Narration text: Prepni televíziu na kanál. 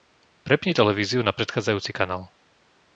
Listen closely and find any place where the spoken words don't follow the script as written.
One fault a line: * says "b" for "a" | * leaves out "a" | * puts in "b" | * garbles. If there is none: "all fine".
* puts in "predchádzajúci"